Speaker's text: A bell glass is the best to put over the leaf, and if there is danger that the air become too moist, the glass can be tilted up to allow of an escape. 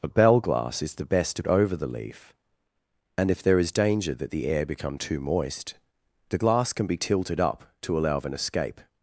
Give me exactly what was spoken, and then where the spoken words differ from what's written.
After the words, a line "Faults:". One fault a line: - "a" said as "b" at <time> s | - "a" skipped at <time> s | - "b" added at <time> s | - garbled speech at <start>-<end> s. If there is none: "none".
A bell glass is the best to over the leaf, and if there is danger that the air become too moist, the glass can be tilted up to allow of an escape.
Faults:
- "put" skipped at 1.4 s